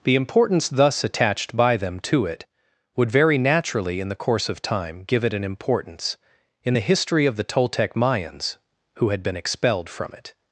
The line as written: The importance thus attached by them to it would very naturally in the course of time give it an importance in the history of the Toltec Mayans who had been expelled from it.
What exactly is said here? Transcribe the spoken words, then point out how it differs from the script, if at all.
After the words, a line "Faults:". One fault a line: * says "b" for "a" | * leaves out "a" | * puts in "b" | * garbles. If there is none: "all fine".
The importance thus attached by them to it would very naturally in the course of time give it an importance in the history of the Toltec Mayans who had been expelled from it.
Faults:
all fine